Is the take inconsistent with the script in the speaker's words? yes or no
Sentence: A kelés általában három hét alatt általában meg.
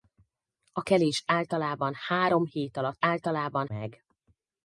no